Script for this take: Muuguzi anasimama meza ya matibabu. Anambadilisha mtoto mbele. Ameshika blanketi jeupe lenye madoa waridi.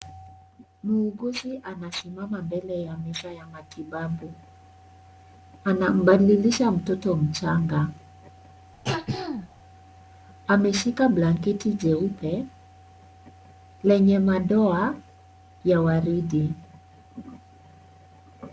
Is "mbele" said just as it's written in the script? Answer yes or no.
no